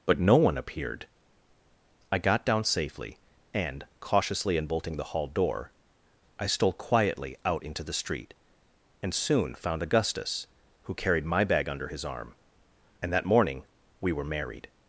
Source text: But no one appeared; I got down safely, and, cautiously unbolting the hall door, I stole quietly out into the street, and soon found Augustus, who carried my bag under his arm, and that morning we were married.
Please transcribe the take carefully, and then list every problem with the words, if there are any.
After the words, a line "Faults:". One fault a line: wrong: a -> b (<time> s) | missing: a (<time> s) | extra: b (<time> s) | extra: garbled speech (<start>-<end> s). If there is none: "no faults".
But no one appeared; I got down safely, and, cautiously unbolting the hall door, I stole quietly out into the street, and soon found Augustus, who carried my bag under his arm, and that morning we were married.
Faults:
no faults